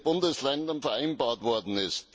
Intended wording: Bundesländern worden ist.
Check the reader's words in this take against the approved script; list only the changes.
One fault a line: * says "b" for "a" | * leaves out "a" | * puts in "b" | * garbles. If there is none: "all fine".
* puts in "vereinbart"